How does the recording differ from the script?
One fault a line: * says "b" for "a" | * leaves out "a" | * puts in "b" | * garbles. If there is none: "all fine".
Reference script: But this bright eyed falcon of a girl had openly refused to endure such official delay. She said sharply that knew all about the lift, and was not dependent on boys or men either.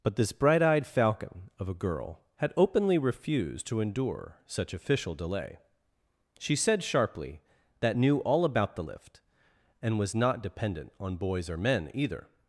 all fine